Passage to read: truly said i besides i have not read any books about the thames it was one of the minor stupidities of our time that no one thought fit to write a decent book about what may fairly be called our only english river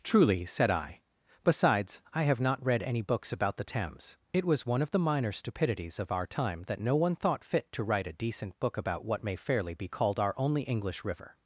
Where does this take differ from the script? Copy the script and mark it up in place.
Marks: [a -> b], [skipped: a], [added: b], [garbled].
truly said i besides i have not read any books about the thames it was one of the minor stupidities of our time that no one thought fit to write a decent book about what may fairly be called our only english river